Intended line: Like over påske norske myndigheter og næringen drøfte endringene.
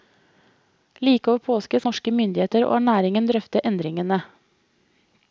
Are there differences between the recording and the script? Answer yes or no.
no